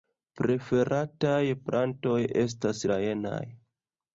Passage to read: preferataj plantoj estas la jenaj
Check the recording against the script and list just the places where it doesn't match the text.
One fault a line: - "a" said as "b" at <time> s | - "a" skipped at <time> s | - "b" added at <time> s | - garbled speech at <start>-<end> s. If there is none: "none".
none